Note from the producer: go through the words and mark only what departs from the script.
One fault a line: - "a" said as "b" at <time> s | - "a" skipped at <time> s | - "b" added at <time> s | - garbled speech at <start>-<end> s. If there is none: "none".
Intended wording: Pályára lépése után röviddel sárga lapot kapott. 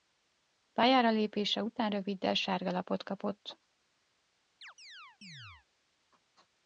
none